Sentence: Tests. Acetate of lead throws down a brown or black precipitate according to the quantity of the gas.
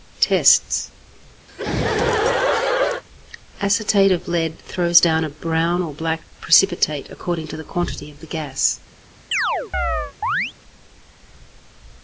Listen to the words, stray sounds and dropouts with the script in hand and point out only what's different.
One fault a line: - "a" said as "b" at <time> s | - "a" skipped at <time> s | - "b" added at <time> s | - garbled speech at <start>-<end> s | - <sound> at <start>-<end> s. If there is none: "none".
- laugh at 1.5-3.0 s
- chirp at 9.3-10.5 s